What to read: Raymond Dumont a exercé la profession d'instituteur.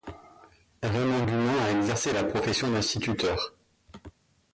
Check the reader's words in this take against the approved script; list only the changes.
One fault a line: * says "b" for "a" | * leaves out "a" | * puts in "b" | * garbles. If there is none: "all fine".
all fine